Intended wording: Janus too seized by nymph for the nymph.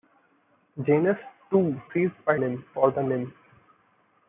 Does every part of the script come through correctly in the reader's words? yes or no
yes